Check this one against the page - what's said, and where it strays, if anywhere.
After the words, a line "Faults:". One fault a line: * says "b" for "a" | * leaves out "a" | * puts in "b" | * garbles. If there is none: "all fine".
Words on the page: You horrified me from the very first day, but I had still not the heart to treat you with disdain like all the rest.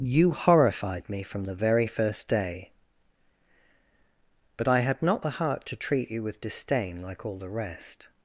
You horrified me from the very first day, but I had not the heart to treat you with disdain like all the rest.
Faults:
* leaves out "still"